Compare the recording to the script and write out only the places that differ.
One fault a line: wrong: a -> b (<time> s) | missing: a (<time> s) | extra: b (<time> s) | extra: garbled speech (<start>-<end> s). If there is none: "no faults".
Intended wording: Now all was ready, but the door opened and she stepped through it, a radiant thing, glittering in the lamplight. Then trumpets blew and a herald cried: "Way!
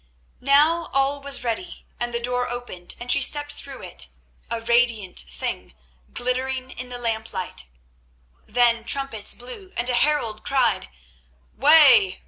wrong: but -> and (2.0 s)